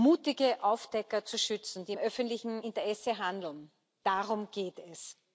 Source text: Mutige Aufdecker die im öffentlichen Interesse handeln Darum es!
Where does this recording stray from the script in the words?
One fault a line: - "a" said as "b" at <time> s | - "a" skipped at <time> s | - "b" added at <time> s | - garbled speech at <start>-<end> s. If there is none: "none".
- "zu schützen" added at 1.2 s
- "geht" added at 4.5 s